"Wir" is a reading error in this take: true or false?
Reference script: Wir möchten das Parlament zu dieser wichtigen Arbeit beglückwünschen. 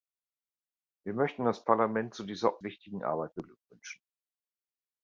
false